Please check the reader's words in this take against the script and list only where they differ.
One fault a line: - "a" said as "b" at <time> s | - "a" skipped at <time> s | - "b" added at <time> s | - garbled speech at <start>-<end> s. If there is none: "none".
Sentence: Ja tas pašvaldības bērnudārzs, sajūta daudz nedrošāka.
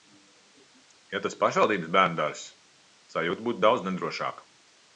- "būtu" added at 3.5 s